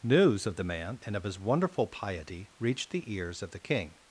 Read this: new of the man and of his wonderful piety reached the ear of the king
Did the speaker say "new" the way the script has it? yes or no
no